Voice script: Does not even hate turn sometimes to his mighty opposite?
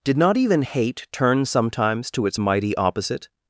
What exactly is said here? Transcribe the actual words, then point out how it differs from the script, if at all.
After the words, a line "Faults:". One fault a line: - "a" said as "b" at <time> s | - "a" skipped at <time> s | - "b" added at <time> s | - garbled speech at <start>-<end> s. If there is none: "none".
Did not even hate turn sometimes to its mighty opposite?
Faults:
- "Does" said as "Did" at 0.0 s
- "his" said as "its" at 2.3 s